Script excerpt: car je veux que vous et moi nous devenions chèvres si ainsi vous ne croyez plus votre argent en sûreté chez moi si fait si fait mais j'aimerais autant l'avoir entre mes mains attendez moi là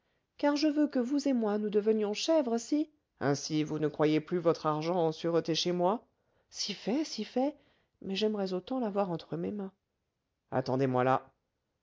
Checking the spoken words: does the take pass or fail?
pass